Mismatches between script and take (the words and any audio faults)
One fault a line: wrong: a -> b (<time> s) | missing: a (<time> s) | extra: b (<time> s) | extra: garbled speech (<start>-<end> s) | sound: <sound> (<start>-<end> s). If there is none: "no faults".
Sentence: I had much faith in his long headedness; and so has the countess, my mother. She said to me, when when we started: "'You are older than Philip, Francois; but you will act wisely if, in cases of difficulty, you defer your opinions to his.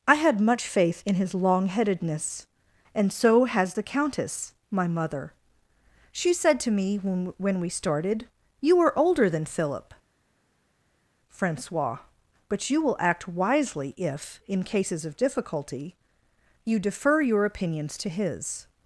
no faults